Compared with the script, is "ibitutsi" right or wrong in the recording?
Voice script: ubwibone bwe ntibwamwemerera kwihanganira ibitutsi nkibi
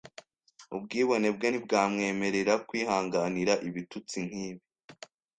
right